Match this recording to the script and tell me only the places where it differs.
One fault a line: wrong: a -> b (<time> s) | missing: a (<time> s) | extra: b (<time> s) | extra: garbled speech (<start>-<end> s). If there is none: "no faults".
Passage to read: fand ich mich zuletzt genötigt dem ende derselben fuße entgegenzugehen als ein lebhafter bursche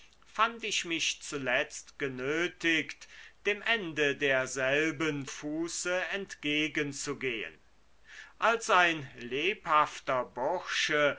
no faults